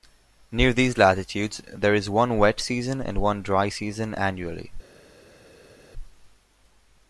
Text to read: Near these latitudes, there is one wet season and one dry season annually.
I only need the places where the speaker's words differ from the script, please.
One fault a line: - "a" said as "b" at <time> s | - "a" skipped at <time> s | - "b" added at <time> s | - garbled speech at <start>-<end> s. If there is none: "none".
none